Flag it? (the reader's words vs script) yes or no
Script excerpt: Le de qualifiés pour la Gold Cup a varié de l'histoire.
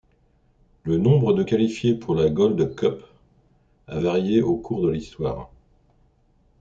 yes